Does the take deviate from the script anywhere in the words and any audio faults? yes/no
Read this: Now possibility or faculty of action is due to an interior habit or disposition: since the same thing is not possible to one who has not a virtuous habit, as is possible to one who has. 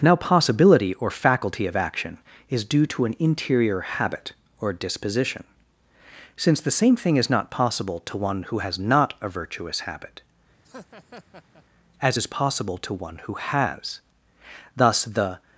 yes